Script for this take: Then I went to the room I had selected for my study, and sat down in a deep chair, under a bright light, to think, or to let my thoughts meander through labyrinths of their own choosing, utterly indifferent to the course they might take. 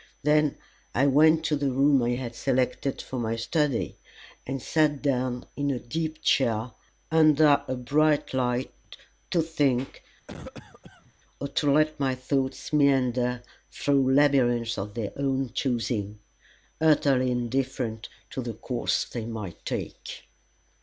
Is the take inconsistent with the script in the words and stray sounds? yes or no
yes